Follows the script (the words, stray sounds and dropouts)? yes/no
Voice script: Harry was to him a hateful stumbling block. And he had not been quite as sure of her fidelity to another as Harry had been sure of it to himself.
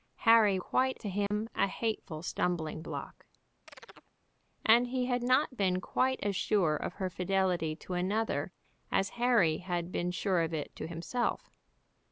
no